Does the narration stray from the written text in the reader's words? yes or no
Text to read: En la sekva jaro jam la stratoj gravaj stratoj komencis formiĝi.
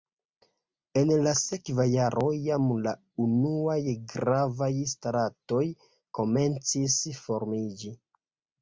yes